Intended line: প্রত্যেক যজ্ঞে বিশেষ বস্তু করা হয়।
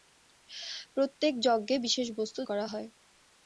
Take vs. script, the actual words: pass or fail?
pass